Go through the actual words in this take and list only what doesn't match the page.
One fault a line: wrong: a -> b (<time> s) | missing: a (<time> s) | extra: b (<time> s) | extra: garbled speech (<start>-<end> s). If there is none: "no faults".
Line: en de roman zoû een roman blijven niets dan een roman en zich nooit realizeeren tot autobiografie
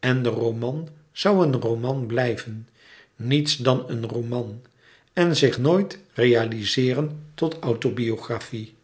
no faults